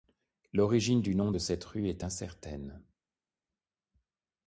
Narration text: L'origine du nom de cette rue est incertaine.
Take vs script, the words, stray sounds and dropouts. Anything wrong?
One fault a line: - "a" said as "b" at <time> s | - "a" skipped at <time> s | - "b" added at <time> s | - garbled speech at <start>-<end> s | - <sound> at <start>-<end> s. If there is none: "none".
none